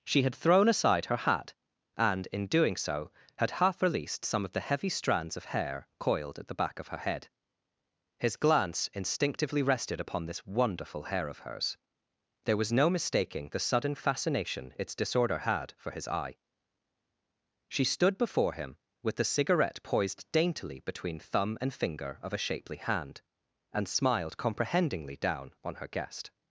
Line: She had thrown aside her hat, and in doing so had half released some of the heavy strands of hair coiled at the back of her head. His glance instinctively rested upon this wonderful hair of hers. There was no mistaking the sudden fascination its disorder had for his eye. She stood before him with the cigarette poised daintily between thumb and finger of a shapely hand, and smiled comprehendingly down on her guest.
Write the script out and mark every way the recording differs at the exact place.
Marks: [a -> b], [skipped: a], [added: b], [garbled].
She had thrown aside her hat, and in doing so had half released some of the heavy strands of hair coiled at the back of her head. His glance instinctively rested upon this wonderful hair of hers. There was no mistaking the sudden fascination its disorder had for his eye. She stood before him with the cigarette poised daintily between thumb and finger of a shapely hand, and smiled comprehendingly down on her guest.